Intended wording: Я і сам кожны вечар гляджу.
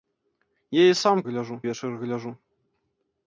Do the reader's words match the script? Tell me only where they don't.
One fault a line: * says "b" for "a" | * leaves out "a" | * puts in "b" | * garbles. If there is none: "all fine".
* says "гляджу" for "кожны"